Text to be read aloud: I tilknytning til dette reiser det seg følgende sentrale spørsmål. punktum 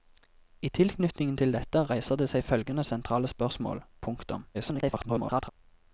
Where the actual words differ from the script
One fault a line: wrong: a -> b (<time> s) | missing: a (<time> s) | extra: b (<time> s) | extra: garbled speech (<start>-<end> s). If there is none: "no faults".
extra: garbled speech (4.5-5.5 s)